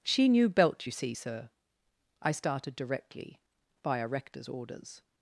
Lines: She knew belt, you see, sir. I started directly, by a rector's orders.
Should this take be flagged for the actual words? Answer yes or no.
no